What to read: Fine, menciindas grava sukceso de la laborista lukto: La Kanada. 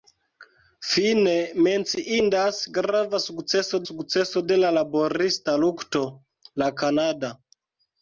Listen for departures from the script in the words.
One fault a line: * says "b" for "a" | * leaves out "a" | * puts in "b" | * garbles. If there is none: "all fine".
* puts in "sukceso"